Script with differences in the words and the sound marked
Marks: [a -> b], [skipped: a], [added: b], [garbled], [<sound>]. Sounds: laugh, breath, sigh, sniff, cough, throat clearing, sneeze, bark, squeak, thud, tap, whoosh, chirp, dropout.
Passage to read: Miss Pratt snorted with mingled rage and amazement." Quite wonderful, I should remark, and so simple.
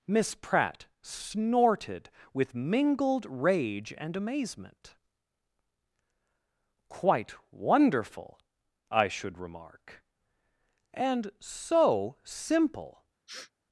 Miss Pratt snorted with mingled rage and amazement." Quite wonderful, I should remark, and so simple. [sniff]